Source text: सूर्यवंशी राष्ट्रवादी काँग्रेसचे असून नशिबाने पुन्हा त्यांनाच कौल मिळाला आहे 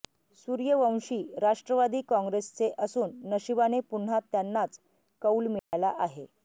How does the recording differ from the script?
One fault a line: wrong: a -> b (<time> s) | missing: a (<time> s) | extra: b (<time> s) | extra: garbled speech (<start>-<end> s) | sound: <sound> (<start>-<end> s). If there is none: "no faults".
sound: dropout (5.6-5.7 s)